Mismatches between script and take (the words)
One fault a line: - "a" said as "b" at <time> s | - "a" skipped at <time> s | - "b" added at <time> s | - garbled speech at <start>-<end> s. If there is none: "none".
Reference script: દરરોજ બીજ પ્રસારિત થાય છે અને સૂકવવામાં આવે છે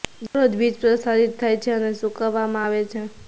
none